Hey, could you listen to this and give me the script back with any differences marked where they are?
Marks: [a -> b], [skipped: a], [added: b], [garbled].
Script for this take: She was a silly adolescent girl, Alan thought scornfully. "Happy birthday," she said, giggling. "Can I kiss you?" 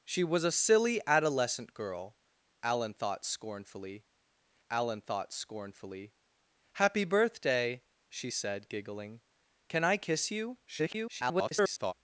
She was a silly adolescent girl, Alan thought scornfully. [added: Alan thought scornfully] "Happy birthday," she said, giggling. "Can I kiss you?" [garbled]